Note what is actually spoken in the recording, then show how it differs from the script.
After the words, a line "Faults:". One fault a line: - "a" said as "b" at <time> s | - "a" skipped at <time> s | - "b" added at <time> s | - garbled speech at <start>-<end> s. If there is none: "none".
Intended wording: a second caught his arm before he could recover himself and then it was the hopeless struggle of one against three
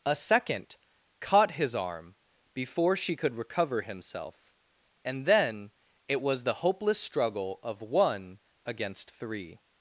a second caught his arm before she could recover himself and then it was the hopeless struggle of one against three
Faults:
- "he" said as "she" at 3.0 s